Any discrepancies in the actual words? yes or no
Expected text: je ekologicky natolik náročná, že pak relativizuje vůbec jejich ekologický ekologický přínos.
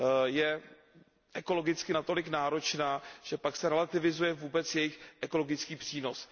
yes